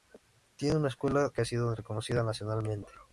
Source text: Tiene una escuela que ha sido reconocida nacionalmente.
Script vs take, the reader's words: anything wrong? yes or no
no